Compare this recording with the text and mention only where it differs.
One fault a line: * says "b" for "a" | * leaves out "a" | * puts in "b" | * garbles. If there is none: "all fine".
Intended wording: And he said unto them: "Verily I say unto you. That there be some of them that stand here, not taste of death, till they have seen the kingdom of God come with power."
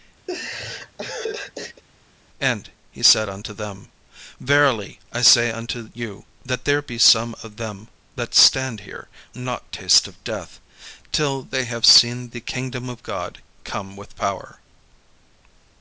all fine